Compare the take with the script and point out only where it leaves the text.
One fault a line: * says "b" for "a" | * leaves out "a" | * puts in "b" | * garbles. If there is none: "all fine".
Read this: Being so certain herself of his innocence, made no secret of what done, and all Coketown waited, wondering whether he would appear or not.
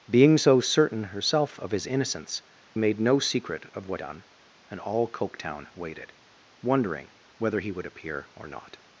all fine